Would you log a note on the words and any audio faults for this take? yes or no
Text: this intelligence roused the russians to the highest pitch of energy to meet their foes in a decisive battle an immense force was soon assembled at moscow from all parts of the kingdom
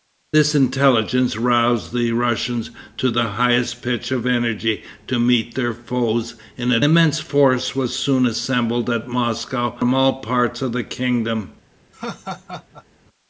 yes